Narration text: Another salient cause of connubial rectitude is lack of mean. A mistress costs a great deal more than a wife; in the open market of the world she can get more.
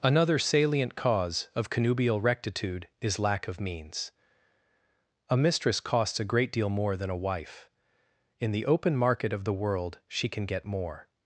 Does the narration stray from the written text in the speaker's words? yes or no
yes